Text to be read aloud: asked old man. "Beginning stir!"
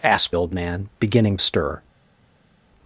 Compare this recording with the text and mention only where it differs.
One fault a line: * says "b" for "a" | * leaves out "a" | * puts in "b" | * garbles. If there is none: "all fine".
all fine